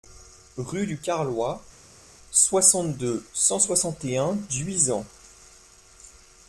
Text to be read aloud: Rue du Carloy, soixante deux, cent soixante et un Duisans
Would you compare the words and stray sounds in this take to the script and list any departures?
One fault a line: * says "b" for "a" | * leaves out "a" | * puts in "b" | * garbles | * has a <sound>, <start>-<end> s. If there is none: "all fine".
all fine